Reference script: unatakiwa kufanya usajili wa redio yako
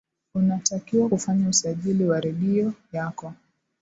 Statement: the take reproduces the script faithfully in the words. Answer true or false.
true